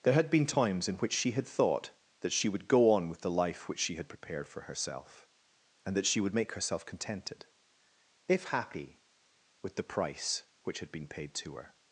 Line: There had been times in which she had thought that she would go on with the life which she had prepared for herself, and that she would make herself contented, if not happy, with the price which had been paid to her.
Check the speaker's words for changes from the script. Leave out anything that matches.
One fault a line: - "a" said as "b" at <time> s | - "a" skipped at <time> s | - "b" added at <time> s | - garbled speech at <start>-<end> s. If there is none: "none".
- "not" skipped at 8.4 s